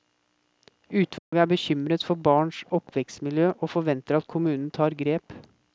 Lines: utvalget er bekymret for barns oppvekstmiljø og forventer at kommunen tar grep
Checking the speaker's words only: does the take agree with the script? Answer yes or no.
yes